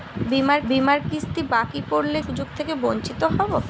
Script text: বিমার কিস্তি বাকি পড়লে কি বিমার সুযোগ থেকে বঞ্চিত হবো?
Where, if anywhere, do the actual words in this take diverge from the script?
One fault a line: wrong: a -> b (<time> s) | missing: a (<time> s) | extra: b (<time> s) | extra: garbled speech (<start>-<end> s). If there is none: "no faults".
extra: বিমার (0.7 s)
missing: কি বিমার (2.2 s)